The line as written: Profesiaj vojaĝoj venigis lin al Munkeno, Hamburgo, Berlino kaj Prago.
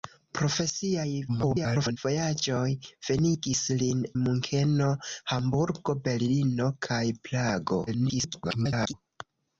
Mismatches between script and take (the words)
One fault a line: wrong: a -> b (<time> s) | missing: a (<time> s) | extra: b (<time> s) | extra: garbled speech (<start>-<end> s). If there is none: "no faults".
extra: garbled speech (1.3-2.0 s)
missing: al (4.0 s)
extra: garbled speech (7.9-8.9 s)